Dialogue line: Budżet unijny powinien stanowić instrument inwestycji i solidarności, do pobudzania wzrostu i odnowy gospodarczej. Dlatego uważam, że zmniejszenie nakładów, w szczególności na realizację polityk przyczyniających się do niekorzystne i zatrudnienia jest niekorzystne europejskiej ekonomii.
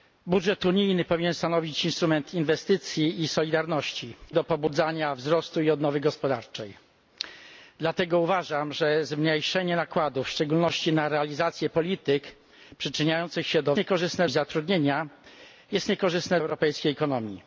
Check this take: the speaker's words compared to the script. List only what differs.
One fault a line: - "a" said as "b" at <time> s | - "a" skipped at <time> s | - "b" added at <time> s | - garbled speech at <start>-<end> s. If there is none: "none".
none